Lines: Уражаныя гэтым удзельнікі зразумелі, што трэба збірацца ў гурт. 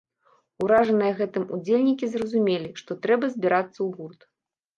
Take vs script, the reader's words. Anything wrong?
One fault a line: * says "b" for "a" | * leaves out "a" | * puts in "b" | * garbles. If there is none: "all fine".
all fine